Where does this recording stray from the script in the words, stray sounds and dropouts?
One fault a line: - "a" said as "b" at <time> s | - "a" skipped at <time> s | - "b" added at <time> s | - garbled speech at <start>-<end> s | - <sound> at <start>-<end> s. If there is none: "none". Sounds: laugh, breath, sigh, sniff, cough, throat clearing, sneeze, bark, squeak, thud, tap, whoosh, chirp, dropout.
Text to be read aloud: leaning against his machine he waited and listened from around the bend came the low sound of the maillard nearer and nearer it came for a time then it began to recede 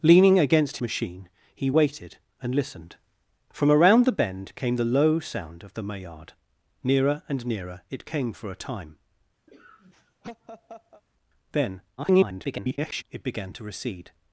- "his" skipped at 0.8 s
- laugh at 9.5-11.0 s
- garbled speech at 12.0-13.0 s